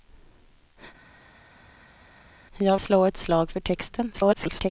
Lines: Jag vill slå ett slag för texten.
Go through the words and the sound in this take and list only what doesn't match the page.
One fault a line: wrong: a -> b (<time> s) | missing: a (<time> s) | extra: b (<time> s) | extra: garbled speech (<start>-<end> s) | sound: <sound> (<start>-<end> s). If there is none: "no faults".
missing: vill (2.8 s)
extra: garbled speech (4.1-4.7 s)